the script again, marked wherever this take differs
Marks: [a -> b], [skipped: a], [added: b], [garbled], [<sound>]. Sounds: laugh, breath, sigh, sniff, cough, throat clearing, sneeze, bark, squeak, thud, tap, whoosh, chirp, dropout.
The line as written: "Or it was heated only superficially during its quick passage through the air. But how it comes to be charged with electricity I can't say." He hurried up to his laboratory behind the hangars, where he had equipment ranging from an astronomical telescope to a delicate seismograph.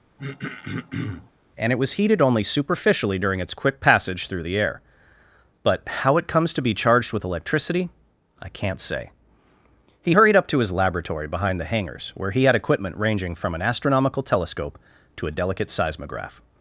[throat clearing] ["Or -> And] it was heated only superficially during its quick passage through the air. But how it comes to be charged with electricity I can't say." He hurried up to his laboratory behind the hangars, where he had equipment ranging from an astronomical telescope to a delicate seismograph.